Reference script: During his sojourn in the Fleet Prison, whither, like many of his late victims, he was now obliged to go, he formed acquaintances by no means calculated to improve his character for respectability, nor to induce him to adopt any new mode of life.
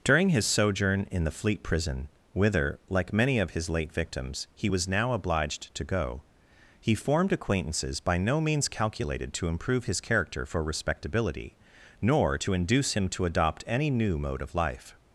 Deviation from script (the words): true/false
false